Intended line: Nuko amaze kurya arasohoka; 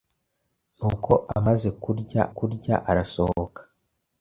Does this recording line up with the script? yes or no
no